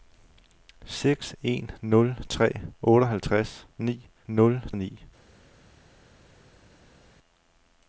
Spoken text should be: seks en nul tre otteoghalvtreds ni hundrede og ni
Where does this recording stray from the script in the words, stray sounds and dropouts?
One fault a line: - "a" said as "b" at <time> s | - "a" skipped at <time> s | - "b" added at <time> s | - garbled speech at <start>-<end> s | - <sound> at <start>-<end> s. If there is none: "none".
- "hundrede" said as "nul" at 4.3 s